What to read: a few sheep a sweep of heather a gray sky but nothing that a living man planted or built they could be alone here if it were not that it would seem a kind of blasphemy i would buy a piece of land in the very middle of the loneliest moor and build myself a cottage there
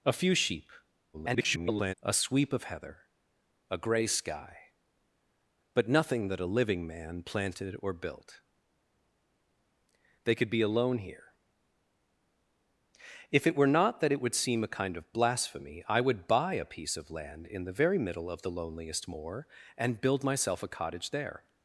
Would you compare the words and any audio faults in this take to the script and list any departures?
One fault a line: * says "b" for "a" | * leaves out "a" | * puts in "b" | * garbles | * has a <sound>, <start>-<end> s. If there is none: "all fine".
* garbles